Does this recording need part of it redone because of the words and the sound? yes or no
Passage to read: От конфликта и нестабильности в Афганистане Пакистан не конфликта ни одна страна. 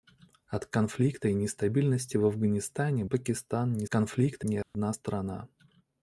yes